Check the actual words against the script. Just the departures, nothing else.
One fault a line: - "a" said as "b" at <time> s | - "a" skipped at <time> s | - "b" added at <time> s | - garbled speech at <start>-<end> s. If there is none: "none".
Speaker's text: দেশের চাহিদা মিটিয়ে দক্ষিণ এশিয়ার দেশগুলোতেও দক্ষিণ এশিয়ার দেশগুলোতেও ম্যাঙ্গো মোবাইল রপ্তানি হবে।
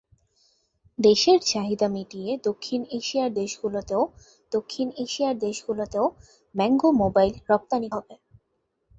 none